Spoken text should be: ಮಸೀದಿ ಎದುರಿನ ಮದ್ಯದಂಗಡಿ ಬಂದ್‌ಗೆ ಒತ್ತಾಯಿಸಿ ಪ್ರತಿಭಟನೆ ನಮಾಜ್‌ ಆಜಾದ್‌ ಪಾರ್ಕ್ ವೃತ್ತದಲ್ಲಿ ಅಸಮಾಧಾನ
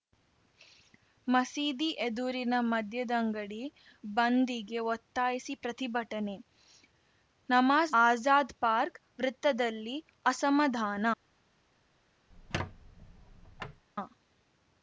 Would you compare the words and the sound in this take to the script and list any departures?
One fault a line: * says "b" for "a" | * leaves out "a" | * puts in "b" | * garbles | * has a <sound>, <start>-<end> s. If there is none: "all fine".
* has a squeak, 12.3-13.8 s